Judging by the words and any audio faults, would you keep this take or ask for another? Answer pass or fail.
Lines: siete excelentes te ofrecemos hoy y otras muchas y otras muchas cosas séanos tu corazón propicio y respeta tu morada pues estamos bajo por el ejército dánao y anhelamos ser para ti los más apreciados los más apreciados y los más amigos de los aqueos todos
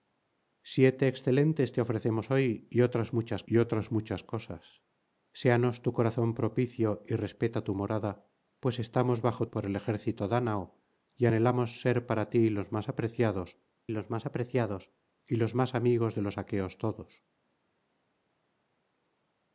pass